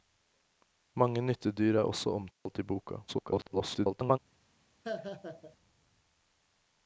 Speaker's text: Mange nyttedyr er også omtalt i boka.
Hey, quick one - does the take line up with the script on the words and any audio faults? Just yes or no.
no